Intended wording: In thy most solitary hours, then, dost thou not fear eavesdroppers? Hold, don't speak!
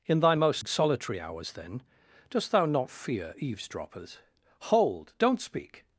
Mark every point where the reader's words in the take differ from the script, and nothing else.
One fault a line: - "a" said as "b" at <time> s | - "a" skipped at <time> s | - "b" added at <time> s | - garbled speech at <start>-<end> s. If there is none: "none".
none